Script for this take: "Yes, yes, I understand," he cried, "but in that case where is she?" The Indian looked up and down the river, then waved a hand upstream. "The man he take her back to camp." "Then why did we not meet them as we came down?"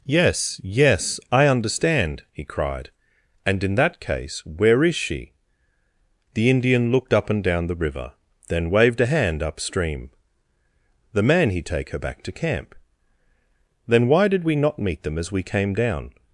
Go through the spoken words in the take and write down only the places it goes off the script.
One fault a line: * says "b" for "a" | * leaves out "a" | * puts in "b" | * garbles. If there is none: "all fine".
* says "and" for "but"